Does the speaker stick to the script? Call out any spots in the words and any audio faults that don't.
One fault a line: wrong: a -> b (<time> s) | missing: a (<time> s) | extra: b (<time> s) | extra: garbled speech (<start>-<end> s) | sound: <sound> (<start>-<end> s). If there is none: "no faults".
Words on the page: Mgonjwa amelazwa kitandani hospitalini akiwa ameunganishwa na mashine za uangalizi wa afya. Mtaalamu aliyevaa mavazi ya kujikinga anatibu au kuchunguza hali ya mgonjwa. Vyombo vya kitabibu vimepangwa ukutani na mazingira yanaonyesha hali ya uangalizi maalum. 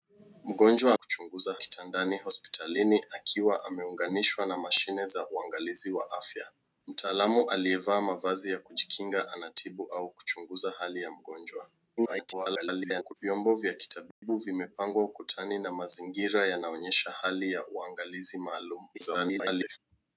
wrong: amelazwa -> kuchunguza (0.9 s)
extra: garbled speech (12.0-13.1 s)
sound: dropout (14.1-14.2 s)
extra: garbled speech (18.9-19.8 s)